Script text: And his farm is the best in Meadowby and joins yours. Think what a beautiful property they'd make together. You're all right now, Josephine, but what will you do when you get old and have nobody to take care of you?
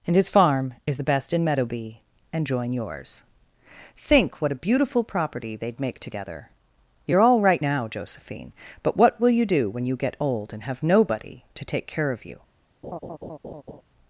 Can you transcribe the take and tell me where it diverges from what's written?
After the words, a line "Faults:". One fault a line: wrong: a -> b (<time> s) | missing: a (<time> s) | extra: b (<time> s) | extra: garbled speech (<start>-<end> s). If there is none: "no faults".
And his farm is the best in Meadowby and join yours. Think what a beautiful property they'd make together. You're all right now, Josephine, but what will you do when you get old and have nobody to take care of you?
Faults:
wrong: joins -> join (2.5 s)